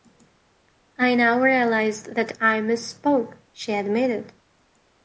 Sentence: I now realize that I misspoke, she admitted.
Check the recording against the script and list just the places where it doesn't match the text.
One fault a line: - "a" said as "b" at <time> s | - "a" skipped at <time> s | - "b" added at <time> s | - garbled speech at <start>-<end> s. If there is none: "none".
none